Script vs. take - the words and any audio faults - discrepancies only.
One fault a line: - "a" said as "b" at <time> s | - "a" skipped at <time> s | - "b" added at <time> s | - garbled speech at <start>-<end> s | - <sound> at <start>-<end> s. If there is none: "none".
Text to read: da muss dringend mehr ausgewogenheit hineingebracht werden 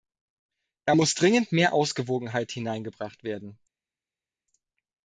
none